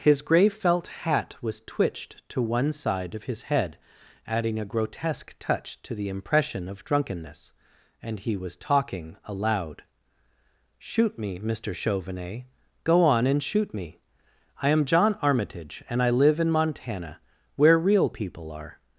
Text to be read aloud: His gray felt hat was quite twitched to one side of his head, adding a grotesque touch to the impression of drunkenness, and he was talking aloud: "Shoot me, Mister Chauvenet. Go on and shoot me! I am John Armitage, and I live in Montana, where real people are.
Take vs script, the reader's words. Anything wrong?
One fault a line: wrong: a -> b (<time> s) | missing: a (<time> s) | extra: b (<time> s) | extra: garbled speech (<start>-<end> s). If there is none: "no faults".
missing: quite (1.6 s)